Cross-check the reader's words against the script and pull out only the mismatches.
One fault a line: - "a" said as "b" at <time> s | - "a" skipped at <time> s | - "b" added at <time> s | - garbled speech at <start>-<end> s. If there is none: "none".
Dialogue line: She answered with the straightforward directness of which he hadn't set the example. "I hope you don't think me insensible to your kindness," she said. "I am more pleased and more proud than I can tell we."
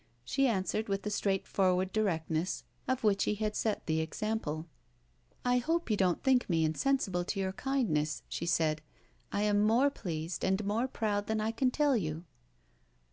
- "hadn't" said as "had" at 3.4 s
- "we" said as "you" at 11.9 s